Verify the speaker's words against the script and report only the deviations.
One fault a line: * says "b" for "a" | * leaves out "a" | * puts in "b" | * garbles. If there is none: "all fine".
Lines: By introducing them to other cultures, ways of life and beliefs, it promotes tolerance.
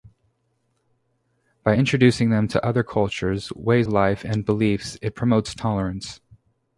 * leaves out "of"